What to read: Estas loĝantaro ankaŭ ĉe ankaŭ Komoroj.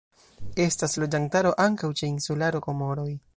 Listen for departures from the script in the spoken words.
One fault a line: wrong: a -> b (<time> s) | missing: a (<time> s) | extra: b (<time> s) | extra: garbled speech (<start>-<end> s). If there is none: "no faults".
wrong: ankaŭ -> insularo (2.1 s)